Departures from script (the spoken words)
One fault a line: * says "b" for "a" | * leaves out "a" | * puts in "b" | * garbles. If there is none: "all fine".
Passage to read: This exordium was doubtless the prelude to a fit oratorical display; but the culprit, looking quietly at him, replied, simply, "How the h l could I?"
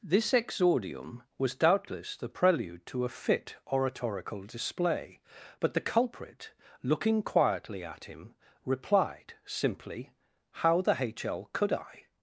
all fine